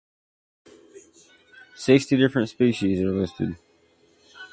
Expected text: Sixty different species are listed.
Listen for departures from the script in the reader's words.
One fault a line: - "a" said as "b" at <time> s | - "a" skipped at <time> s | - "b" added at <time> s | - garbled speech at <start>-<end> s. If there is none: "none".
none